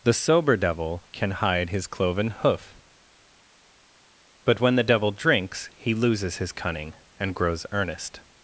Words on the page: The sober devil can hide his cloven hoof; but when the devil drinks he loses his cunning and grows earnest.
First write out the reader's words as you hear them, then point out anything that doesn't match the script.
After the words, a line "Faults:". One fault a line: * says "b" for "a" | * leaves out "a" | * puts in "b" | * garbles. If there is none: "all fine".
The sober devil can hide his cloven hoof; but when the devil drinks he loses his cunning and grows earnest.
Faults:
all fine